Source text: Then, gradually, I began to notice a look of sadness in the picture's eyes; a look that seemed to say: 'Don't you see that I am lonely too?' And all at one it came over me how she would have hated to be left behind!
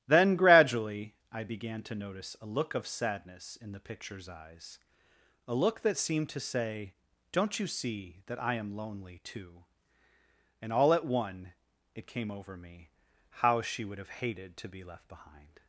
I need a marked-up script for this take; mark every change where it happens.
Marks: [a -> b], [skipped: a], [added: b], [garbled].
Then, gradually, I began to notice a look of sadness in the picture's eyes; a look that seemed to say: 'Don't you see that I am lonely too?' And all at one it came over me how she would have hated to be left behind!